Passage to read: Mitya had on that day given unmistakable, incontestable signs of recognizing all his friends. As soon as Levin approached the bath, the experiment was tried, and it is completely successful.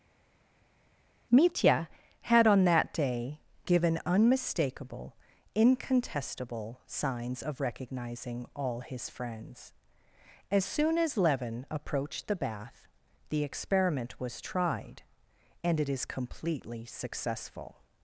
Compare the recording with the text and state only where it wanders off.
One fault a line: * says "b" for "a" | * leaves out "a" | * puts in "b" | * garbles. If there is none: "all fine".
all fine